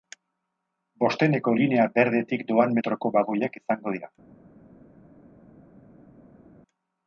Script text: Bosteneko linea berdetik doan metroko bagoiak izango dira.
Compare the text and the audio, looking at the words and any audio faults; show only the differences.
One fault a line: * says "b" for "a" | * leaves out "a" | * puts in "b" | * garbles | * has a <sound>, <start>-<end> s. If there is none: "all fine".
all fine